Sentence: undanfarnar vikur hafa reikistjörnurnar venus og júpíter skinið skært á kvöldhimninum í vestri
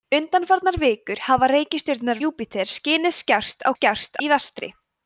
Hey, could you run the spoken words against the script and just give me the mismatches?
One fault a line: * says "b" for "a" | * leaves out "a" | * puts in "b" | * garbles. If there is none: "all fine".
* leaves out "venus og"
* says "skært" for "kvöldhimninum"